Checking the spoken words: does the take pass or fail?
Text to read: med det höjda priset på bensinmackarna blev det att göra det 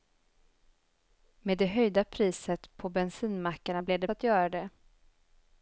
pass